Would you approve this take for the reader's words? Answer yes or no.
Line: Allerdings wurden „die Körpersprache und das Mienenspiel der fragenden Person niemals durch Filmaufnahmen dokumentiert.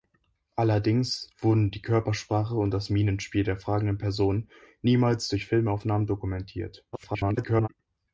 no